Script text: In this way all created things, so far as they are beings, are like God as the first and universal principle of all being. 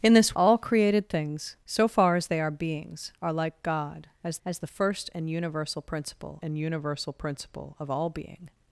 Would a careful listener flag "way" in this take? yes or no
yes